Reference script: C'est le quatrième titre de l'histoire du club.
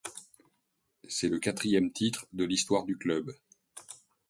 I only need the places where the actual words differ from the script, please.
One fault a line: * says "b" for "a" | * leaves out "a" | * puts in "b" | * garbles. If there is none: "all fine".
all fine